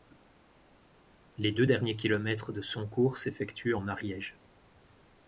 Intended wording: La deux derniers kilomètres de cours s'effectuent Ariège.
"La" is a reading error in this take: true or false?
true